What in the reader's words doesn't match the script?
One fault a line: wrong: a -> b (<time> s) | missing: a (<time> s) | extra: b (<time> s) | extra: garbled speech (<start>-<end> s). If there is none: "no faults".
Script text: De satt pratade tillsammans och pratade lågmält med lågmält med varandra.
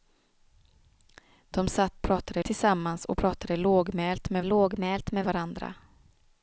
no faults